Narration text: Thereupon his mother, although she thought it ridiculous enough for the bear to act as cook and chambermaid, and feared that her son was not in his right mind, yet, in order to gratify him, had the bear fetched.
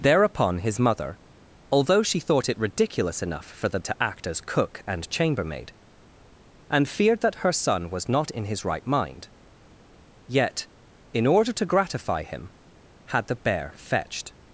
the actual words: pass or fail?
fail